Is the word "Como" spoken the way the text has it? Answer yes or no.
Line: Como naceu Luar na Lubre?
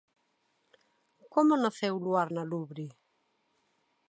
yes